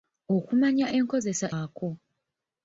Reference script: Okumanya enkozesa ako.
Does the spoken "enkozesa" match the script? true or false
true